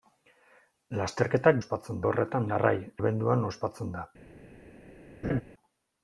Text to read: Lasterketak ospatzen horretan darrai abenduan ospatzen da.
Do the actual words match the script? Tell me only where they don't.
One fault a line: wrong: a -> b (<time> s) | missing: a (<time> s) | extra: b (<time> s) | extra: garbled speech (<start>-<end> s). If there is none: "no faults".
no faults